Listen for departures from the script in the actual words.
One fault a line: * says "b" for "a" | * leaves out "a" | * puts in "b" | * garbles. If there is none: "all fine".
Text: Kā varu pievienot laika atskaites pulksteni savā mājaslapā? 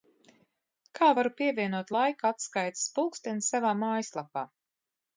all fine